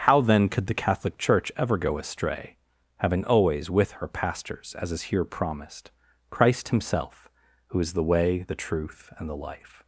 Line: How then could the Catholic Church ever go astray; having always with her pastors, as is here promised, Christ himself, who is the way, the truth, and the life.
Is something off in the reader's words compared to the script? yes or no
no